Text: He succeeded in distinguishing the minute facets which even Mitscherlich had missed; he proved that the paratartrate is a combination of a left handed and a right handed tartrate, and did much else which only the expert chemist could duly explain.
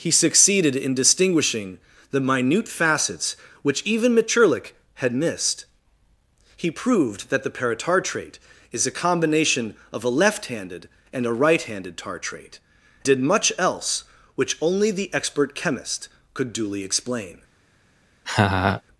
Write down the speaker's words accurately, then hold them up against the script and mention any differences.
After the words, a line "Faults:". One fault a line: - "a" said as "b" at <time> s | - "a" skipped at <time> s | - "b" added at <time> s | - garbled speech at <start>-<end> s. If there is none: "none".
He succeeded in distinguishing the minute facets which even Mitscherlich had missed; he proved that the paratartrate is a combination of a left handed and a right handed tartrate, did much else which only the expert chemist could duly explain.
Faults:
- "and" skipped at 12.6 s